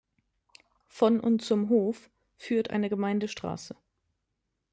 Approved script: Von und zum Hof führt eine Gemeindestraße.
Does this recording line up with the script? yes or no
yes